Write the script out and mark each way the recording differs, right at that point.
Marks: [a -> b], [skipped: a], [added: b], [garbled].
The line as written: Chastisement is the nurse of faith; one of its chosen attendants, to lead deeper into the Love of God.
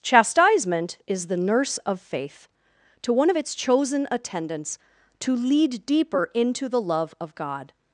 Chastisement is the nurse of faith; [added: to] one of its chosen attendants, to lead deeper into the Love of God.